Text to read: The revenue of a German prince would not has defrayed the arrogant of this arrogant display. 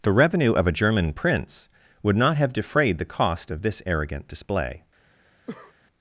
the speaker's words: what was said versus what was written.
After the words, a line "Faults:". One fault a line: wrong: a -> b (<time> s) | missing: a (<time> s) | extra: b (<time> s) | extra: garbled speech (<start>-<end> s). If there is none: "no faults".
The revenue of a German prince would not have defrayed the cost of this arrogant display.
Faults:
wrong: has -> have (2.4 s)
wrong: arrogant -> cost (3.0 s)